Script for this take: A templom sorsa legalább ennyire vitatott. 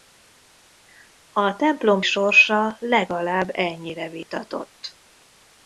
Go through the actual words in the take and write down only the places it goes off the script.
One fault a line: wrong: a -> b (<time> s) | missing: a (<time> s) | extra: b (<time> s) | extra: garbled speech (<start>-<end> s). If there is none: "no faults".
no faults